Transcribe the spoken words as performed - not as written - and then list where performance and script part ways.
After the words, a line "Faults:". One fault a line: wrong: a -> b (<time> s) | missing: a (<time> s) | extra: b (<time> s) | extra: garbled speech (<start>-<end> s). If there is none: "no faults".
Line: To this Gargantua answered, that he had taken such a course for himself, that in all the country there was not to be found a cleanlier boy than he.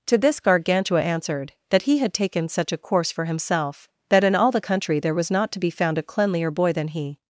To this Gargantua answered, that he had taken such a course for himself, that in all the country there was not to be found a cleanlier boy than he.
Faults:
no faults